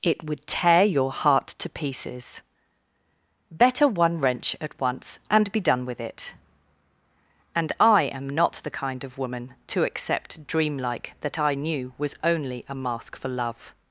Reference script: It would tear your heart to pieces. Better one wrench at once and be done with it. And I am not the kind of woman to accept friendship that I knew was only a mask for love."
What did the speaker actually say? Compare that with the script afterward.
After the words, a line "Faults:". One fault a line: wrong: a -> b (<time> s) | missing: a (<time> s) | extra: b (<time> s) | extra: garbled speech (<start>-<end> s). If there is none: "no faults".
It would tear your heart to pieces. Better one wrench at once and be done with it. And I am not the kind of woman to accept dreamlike that I knew was only a mask for love."
Faults:
wrong: friendship -> dreamlike (10.5 s)